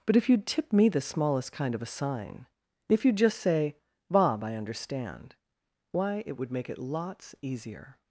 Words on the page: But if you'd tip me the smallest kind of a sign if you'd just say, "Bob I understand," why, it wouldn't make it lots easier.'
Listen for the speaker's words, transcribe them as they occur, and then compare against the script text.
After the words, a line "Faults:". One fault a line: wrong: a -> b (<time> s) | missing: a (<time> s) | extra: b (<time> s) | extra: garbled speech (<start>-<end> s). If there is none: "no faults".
But if you'd tip me the smallest kind of a sign if you'd just say, "Bob I understand," why, it would make it lots easier.'
Faults:
wrong: wouldn't -> would (6.3 s)